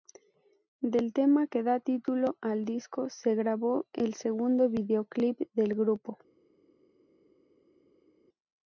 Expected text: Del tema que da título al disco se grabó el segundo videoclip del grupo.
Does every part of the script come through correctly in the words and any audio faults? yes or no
yes